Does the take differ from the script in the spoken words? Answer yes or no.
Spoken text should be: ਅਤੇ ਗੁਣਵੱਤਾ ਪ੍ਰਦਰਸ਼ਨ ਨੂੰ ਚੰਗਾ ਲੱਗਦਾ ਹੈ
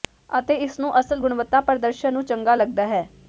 yes